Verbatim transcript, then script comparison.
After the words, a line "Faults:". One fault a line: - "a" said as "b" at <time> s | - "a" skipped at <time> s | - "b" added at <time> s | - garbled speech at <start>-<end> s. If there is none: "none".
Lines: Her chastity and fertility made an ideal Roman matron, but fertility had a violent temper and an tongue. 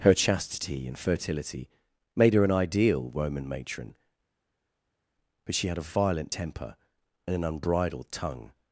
Her chastity and fertility made her an ideal Roman matron, but she had a violent temper and an unbridled tongue.
Faults:
- "her" added at 2.3 s
- "fertility" said as "she" at 5.5 s
- "unbridled" added at 7.4 s